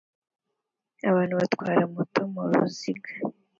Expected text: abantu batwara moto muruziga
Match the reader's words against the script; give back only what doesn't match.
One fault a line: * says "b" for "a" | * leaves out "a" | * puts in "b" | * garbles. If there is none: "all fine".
all fine